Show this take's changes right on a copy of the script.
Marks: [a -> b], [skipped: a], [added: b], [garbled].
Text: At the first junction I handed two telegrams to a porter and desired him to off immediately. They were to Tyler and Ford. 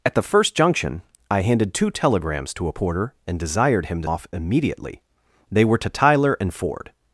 At the first junction I handed two telegrams to a porter and desired him to off immediately. They were to Tyler and Ford.